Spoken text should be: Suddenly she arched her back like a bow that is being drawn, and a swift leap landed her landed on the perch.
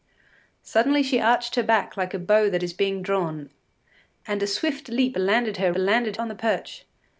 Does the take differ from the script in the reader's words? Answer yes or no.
no